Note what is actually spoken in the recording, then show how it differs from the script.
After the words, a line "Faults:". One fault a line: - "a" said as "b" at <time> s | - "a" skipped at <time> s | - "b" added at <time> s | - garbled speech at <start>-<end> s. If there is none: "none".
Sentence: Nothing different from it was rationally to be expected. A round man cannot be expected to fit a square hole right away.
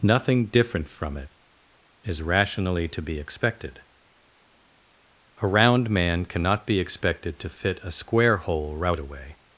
Nothing different from it is rationally to be expected. A round man cannot be expected to fit a square hole right away.
Faults:
- "was" said as "is" at 2.0 s